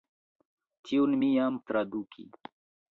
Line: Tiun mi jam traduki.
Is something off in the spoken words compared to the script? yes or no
no